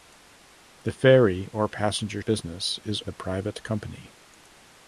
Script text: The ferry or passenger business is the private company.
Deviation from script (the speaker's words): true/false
false